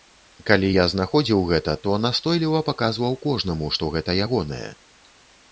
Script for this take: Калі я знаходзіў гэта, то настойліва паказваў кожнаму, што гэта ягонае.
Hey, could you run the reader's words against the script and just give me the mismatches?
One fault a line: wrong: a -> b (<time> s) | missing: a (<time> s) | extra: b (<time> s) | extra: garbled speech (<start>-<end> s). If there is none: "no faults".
no faults